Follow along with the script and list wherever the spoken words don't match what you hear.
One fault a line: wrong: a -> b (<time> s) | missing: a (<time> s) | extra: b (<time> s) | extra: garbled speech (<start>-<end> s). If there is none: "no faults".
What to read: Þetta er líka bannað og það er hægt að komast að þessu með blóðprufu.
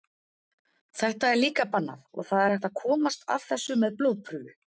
no faults